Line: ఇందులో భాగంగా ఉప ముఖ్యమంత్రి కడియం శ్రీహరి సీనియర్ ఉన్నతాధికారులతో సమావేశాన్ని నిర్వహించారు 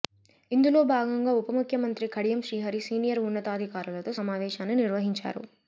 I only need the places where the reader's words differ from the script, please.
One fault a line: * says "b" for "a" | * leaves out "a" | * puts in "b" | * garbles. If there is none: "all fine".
all fine